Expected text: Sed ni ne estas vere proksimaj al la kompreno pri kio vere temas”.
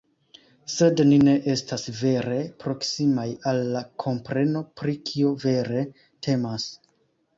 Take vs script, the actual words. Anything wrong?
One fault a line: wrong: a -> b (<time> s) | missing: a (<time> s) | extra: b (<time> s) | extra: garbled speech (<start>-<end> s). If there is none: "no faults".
no faults